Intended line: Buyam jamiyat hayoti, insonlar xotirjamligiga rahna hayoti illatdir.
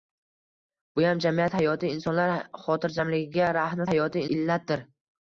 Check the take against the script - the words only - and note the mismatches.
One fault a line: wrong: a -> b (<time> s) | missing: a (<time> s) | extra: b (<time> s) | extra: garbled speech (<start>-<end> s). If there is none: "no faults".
no faults